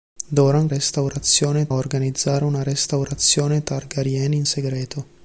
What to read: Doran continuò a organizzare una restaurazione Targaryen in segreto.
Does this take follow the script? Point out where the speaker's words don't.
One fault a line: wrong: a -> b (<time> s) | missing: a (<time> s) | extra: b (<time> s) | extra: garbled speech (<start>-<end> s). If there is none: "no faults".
wrong: continuò -> restaurazione (0.7 s)